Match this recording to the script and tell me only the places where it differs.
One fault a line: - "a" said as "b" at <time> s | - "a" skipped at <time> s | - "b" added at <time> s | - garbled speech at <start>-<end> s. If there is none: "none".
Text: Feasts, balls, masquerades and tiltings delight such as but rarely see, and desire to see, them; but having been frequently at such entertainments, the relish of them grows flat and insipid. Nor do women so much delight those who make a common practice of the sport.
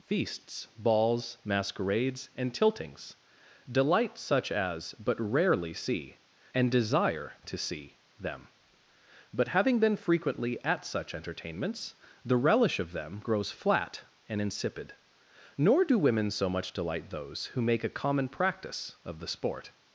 none